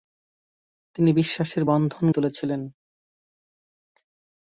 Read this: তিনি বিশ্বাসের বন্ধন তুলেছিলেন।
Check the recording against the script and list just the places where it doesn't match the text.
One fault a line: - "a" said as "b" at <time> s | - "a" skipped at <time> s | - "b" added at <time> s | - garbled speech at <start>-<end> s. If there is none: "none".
none